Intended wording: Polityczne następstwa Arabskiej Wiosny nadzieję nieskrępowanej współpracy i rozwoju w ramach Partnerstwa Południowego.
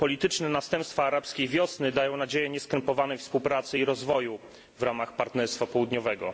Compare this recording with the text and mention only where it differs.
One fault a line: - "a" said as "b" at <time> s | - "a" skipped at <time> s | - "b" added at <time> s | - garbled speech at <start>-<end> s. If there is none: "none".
- "dają" added at 1.9 s